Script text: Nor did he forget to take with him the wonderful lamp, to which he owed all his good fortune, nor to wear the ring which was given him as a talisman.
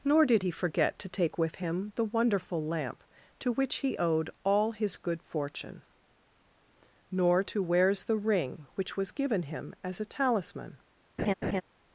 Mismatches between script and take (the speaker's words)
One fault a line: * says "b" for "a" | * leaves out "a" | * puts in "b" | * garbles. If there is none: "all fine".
* says "wears" for "wear"